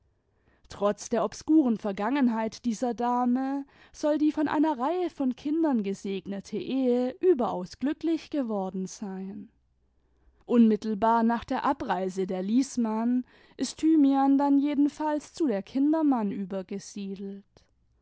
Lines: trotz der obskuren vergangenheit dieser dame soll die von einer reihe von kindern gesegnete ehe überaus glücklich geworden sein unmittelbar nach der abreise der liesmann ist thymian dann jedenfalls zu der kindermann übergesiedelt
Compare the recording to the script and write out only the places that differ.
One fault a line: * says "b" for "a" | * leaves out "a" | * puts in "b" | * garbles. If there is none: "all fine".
all fine